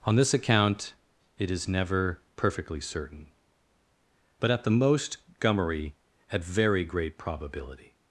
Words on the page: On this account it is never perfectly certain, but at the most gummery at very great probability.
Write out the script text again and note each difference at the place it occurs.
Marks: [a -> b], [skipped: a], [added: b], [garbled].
On this account it is never perfectly certain, but at the most gummery at very great probability.